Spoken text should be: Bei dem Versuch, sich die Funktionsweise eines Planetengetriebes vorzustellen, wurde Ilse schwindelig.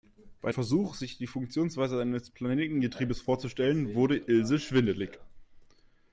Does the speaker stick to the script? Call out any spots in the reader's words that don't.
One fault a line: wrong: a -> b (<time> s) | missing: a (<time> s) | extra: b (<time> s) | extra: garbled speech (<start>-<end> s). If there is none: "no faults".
missing: dem (0.5 s)